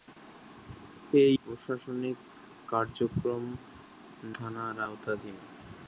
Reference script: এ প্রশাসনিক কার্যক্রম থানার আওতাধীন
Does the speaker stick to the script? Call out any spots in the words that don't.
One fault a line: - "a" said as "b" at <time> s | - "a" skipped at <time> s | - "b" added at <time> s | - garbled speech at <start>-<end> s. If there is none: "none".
none